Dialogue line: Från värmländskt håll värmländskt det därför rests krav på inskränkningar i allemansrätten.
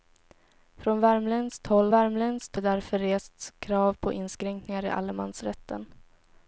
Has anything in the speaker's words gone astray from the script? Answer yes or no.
no